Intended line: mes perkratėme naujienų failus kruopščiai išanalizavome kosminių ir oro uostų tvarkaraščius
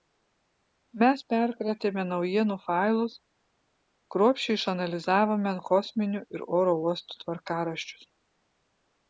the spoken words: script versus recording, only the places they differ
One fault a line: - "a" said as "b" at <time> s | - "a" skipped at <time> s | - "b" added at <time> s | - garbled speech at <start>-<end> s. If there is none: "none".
none